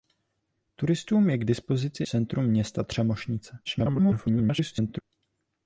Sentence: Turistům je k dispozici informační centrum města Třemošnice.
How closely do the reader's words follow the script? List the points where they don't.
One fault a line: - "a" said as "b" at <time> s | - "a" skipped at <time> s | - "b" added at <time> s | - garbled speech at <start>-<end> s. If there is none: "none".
- "informační" skipped at 2.0 s
- garbled speech at 3.6-5.0 s